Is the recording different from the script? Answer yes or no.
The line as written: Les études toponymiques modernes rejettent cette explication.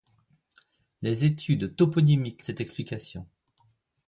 yes